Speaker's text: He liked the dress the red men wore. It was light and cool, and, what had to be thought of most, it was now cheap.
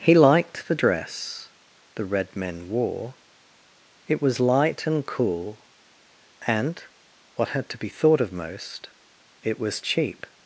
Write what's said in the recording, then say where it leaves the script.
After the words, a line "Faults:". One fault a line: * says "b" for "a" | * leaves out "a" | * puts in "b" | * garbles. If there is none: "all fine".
He liked the dress the red men wore. It was light and cool, and, what had to be thought of most, it was cheap.
Faults:
* leaves out "now"